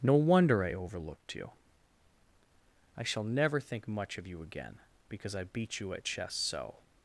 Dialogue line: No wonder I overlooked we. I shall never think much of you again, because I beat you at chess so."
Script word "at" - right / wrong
right